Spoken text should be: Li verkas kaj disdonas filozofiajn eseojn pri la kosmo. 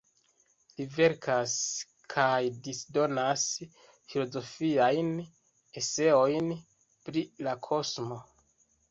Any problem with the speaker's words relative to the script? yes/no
no